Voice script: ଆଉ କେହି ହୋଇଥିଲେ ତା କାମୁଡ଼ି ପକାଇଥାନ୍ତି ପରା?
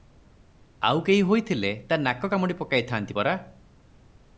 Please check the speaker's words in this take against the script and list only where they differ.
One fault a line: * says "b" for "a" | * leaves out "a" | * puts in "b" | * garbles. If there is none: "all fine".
* puts in "ନାକ"